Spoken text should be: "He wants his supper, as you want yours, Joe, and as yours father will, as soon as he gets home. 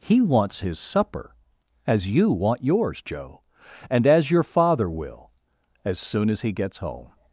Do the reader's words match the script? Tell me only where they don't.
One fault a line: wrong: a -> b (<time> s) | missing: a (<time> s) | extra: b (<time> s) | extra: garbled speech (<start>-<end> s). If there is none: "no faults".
wrong: yours -> your (4.3 s)